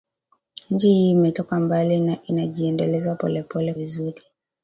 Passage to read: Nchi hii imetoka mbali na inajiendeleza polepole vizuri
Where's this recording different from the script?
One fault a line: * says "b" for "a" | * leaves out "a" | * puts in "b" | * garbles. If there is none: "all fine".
all fine